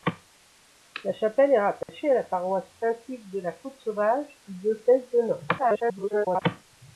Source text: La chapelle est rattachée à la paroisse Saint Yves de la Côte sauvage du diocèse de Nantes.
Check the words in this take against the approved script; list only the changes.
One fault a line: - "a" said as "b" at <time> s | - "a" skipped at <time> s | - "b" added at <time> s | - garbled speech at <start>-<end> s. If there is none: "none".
- garbled speech at 5.6-6.4 s